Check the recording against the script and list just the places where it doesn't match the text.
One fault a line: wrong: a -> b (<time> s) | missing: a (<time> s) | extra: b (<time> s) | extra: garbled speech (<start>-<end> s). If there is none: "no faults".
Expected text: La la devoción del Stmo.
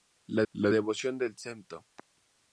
no faults